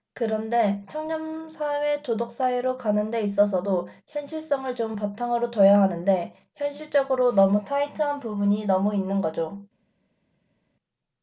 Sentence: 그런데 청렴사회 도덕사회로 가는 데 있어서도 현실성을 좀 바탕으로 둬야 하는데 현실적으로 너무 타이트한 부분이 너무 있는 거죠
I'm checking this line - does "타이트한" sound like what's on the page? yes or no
yes